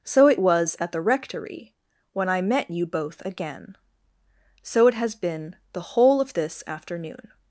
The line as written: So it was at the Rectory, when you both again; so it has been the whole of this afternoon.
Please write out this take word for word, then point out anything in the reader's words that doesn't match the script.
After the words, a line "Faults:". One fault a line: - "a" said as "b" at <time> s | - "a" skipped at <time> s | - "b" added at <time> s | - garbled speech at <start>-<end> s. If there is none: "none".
So it was at the Rectory, when I met you both again; so it has been the whole of this afternoon.
Faults:
- "I met" added at 2.3 s